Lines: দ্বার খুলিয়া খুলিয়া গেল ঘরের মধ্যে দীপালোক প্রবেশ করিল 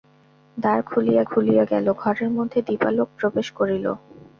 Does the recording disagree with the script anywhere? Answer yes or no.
no